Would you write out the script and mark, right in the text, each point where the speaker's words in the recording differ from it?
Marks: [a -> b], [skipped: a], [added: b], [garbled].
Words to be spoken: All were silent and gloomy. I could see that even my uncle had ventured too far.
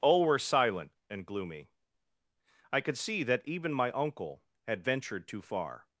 All were silent and gloomy. I could see that even my uncle had ventured too far.